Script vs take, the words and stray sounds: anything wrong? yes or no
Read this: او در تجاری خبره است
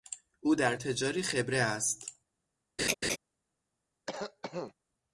yes